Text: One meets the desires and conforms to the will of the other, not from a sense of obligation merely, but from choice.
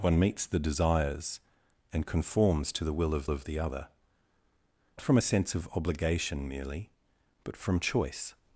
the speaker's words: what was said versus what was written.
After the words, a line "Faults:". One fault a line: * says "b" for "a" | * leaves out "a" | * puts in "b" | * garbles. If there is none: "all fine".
One meets the desires and conforms to the will of of the other, from a sense of obligation merely, but from choice.
Faults:
* puts in "of"
* leaves out "not"